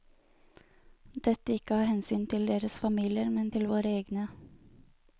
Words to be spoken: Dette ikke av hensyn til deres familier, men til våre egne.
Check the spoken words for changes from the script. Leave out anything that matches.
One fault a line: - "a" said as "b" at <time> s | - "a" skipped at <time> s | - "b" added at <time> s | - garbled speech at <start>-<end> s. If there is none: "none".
none